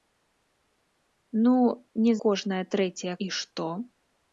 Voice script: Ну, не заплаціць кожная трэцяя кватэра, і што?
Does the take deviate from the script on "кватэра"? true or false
true